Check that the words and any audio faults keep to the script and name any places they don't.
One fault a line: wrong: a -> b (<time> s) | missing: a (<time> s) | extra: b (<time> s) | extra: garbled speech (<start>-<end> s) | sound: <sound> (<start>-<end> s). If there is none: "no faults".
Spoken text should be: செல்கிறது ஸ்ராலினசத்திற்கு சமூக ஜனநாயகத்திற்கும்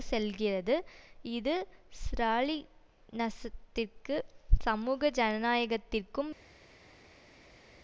extra: இது (1.3 s)